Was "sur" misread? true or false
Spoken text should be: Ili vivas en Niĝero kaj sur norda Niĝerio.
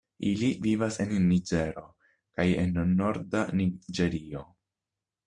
true